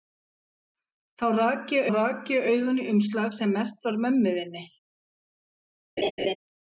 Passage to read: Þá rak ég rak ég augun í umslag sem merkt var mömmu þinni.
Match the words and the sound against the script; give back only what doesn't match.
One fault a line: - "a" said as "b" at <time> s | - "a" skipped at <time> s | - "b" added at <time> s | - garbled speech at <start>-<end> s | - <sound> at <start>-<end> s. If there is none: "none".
- laugh at 6.0-6.4 s